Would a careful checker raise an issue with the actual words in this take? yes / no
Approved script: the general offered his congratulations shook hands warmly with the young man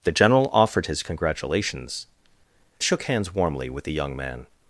no